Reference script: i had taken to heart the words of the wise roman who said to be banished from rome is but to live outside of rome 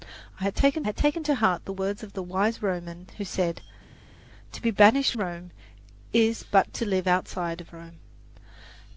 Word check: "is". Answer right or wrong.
right